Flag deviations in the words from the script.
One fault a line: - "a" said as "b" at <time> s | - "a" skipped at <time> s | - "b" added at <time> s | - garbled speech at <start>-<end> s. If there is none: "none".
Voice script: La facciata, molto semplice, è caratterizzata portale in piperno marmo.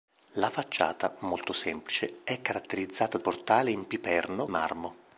none